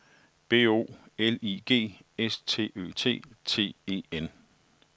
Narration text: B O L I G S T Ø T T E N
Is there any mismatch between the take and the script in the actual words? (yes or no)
no